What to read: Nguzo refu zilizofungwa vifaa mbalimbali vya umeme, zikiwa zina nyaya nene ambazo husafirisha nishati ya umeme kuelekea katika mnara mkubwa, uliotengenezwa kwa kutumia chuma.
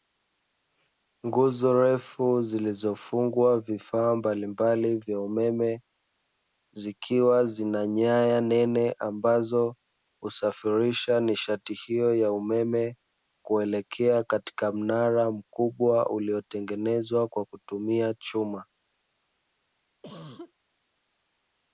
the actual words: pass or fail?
fail